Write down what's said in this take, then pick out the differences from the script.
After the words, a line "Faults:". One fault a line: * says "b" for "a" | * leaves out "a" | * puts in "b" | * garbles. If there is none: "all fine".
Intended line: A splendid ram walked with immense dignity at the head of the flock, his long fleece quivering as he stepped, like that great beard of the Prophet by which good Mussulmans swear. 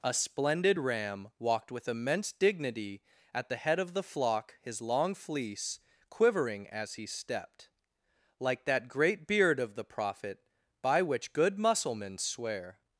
A splendid ram walked with immense dignity at the head of the flock, his long fleece quivering as he stepped, like that great beard of the Prophet by which good Mussulmans swear.
Faults:
all fine